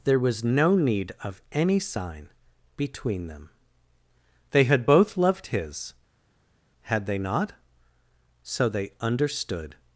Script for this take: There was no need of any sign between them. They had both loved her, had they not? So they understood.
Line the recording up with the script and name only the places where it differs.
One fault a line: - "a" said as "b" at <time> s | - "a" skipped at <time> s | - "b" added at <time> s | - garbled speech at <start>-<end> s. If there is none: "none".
- "her" said as "his" at 5.4 s